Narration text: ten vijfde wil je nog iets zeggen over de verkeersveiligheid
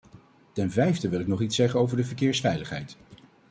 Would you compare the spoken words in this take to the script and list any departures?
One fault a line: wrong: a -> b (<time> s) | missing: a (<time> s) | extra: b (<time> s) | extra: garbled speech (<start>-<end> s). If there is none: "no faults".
wrong: je -> ik (1.2 s)